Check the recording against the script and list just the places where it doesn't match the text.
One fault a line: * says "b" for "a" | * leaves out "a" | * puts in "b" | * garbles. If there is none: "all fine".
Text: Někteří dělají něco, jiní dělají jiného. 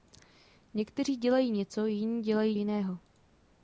all fine